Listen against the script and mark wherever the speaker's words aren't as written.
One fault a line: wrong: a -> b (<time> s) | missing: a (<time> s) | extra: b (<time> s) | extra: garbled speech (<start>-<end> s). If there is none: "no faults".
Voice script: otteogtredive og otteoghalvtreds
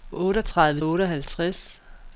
no faults